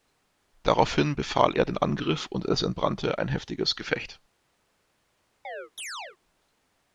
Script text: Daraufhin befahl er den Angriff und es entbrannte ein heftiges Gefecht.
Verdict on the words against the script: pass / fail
pass